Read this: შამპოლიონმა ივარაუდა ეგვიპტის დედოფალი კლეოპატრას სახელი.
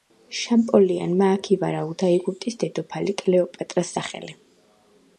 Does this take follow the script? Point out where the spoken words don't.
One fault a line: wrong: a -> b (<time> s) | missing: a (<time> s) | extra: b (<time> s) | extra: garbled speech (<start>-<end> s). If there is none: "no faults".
extra: აქ (1.3 s)